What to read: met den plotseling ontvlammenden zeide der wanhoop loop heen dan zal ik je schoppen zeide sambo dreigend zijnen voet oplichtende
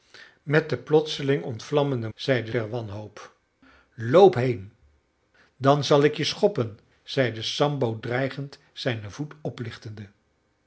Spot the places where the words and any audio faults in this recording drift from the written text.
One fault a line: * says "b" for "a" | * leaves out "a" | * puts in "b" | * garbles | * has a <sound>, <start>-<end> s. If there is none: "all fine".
all fine